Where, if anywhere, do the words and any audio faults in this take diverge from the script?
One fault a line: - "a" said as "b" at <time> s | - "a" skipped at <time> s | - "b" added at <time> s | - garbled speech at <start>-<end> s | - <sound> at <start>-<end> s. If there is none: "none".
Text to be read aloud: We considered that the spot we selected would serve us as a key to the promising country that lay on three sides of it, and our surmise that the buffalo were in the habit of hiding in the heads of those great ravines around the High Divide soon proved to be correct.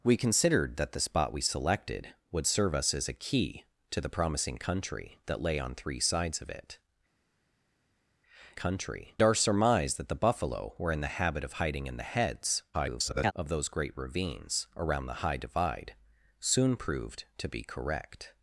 - "and" said as "country" at 8.5 s
- garbled speech at 12.7-13.3 s